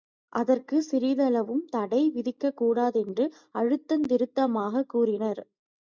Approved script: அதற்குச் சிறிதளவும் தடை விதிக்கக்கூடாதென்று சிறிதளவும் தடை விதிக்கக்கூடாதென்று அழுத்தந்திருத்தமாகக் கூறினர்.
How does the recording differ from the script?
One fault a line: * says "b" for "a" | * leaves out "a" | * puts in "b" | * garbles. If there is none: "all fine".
* leaves out "சிறிதளவும் தடை விதிக்கக்கூடாதென்று"